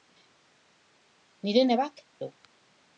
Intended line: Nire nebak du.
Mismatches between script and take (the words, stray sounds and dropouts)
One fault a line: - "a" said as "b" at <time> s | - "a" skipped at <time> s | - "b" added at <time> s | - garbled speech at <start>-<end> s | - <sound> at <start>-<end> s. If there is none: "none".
none